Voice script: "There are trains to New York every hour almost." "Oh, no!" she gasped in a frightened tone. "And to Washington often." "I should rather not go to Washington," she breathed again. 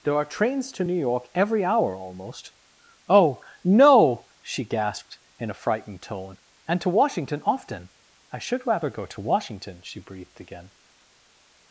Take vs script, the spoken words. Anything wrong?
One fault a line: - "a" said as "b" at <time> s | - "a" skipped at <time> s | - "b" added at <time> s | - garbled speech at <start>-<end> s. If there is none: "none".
- "not" skipped at 8.9 s